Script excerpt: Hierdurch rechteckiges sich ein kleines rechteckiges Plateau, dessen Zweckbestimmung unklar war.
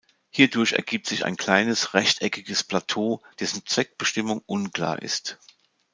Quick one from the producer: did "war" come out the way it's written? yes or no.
no